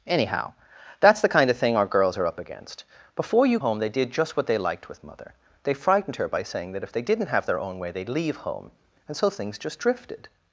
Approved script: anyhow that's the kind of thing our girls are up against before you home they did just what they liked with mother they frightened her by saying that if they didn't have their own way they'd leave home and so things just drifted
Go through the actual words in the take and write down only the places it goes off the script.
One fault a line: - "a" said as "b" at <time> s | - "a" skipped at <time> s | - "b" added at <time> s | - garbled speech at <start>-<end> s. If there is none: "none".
none